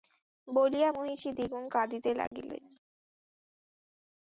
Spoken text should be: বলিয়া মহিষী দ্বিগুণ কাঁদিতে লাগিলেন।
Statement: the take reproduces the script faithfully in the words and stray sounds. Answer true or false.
false